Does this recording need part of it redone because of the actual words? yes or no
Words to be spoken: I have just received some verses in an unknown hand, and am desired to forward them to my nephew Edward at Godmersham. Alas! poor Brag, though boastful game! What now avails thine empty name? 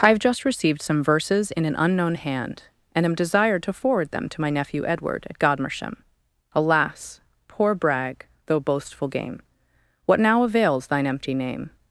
no